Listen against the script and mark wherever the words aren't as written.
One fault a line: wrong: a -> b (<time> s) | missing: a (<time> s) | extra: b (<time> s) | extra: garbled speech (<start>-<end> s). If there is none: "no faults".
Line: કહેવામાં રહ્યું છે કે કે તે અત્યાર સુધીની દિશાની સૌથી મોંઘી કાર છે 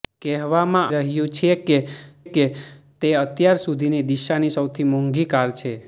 no faults